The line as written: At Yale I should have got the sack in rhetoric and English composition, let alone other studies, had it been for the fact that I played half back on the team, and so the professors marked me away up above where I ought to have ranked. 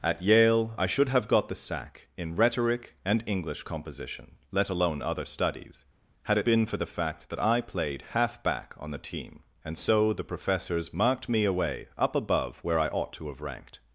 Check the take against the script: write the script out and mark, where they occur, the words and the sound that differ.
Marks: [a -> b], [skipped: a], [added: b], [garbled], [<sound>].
At Yale I should have got the sack in rhetoric and English composition, let alone other studies, had it been for the fact that I played half back on the team, and so the professors marked me away up above where I ought to have ranked.